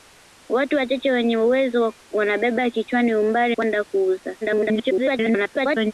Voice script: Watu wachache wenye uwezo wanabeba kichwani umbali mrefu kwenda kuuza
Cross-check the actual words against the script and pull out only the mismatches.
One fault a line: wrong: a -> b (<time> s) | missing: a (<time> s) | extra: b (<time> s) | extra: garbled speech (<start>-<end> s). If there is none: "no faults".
missing: mrefu (3.6 s)
extra: garbled speech (4.4-5.9 s)